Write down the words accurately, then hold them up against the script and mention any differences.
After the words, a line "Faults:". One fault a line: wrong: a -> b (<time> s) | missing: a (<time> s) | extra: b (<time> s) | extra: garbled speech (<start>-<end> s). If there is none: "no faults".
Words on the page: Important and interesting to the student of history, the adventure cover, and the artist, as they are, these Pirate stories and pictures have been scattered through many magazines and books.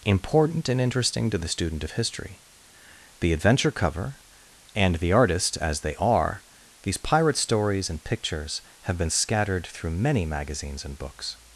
Important and interesting to the student of history, the adventure cover, and the artist, as they are, these Pirate stories and pictures have been scattered through many magazines and books.
Faults:
no faults